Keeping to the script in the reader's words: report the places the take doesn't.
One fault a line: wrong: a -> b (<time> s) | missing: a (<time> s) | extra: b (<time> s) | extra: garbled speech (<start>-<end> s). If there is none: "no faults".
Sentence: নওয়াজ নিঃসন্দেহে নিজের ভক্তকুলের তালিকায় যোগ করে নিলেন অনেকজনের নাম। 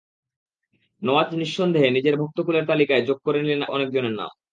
no faults